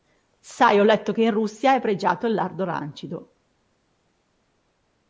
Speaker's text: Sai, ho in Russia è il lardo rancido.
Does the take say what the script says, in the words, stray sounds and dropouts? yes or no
no